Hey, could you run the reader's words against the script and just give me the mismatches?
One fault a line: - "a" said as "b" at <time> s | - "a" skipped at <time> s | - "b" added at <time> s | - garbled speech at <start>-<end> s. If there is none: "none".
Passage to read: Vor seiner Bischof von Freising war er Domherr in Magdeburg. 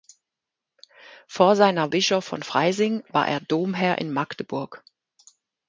none